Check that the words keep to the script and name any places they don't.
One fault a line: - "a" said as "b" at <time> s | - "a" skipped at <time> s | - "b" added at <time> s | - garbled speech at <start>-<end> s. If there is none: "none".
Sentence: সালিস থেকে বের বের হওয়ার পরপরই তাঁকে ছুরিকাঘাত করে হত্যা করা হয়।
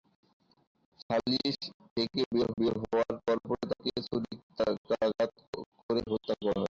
none